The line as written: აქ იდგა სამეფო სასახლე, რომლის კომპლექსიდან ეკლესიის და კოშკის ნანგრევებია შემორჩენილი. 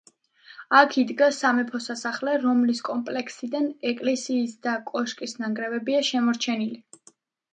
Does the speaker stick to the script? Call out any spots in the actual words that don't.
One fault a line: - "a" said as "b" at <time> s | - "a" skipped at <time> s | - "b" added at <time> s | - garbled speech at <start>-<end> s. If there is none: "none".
none